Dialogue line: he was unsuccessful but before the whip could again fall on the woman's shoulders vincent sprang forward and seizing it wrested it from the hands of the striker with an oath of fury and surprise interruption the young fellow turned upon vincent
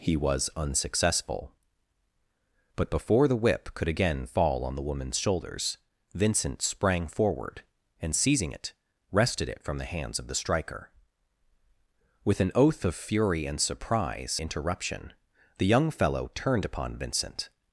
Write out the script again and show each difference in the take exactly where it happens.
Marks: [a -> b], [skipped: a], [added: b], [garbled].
he was unsuccessful but before the whip could again fall on the woman's shoulders vincent sprang forward and seizing it wrested it from the hands of the striker with an oath of fury and surprise interruption the young fellow turned upon vincent